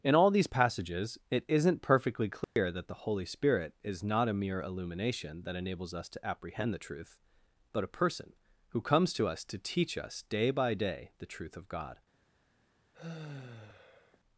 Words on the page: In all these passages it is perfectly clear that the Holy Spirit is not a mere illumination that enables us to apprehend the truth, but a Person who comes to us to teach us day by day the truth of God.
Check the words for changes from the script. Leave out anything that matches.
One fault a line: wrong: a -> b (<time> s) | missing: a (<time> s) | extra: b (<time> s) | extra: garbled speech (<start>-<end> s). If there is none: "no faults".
wrong: is -> isn't (1.5 s)